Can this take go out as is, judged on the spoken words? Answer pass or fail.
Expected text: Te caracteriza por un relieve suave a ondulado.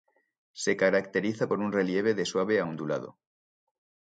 fail